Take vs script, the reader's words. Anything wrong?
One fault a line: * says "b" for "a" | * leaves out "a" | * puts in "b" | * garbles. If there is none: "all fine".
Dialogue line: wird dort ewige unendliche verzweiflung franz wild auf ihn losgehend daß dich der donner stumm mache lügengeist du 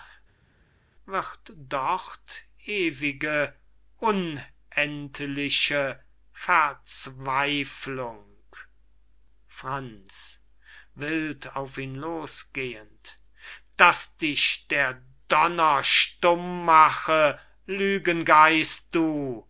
all fine